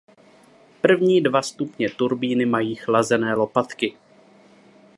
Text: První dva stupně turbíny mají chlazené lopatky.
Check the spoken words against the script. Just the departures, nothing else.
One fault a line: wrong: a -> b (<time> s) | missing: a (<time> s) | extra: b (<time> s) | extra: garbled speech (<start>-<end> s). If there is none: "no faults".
no faults